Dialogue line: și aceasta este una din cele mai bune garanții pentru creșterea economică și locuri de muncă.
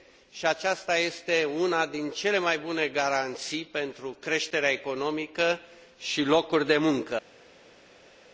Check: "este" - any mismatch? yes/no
no